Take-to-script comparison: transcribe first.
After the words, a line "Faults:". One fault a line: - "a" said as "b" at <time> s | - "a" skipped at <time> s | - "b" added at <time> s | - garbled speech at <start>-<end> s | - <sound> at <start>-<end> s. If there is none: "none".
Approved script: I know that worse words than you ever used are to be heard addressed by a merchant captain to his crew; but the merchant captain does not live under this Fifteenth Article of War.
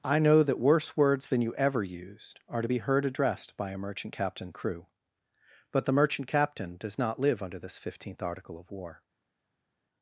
I know that worse words than you ever used are to be heard addressed by a merchant captain crew; but the merchant captain does not live under this Fifteenth Article of War.
Faults:
- "to his" skipped at 4.5 s